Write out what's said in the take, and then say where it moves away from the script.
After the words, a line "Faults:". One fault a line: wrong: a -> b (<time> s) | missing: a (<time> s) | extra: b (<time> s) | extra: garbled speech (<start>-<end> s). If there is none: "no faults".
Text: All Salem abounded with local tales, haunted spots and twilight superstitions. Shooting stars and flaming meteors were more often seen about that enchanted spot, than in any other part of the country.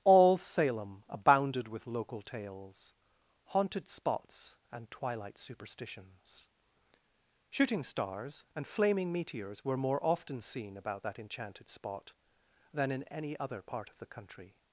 All Salem abounded with local tales, haunted spots and twilight superstitions. Shooting stars and flaming meteors were more often seen about that enchanted spot, than in any other part of the country.
Faults:
no faults